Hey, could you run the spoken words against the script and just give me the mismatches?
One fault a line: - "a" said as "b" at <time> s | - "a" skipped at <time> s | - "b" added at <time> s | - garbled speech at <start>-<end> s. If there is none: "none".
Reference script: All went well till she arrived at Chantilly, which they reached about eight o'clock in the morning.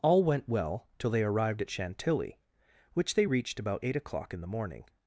- "she" said as "they" at 1.1 s